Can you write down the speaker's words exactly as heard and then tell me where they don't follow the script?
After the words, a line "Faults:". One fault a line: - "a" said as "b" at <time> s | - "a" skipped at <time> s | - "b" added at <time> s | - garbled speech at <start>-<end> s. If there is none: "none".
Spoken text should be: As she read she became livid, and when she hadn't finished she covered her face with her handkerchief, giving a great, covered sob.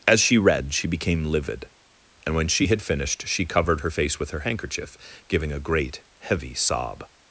As she read she became livid, and when she had finished she covered her face with her handkerchief, giving a great, heavy sob.
Faults:
- "hadn't" said as "had" at 2.7 s
- "covered" said as "heavy" at 6.2 s